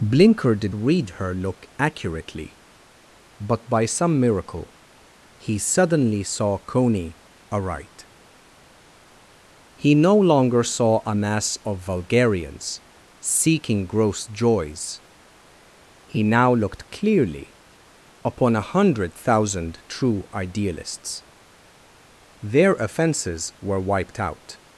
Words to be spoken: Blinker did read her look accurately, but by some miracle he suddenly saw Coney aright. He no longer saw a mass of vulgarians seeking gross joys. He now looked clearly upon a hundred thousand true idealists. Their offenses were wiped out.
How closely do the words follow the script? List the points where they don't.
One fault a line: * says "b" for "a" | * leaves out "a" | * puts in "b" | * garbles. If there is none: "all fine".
all fine